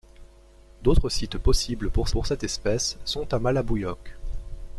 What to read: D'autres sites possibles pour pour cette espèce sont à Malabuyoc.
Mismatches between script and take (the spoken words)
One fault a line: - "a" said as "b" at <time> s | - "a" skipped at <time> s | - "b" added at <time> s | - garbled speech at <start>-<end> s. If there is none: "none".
none